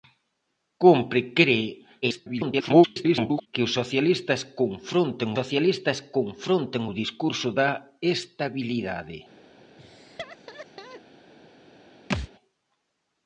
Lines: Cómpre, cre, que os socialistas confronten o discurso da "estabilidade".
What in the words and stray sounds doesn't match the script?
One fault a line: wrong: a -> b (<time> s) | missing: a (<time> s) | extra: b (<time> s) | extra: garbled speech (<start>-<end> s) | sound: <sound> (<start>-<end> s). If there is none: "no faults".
extra: garbled speech (2.0-3.5 s)
extra: socialistas confronten (5.4 s)
sound: laugh (9.8-11.0 s)
sound: thud (12.1-12.3 s)